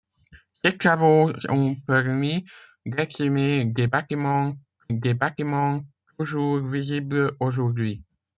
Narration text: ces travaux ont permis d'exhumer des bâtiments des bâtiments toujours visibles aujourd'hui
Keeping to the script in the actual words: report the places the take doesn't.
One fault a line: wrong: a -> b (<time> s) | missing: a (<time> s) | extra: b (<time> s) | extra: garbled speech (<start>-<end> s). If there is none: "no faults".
no faults